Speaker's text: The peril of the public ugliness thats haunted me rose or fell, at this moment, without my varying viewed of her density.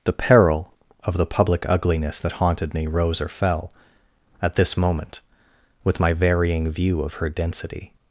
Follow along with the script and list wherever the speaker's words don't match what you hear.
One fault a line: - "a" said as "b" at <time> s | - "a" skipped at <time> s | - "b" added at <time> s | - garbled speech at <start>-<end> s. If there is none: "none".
- "thats" said as "that" at 2.2 s
- "without" said as "with" at 5.8 s
- "viewed" said as "view" at 6.7 s